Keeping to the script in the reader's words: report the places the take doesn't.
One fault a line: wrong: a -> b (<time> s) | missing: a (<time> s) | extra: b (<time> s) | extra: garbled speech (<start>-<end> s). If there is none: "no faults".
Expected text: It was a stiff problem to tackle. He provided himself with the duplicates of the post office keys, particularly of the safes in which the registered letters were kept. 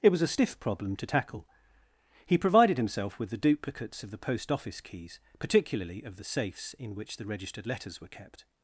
no faults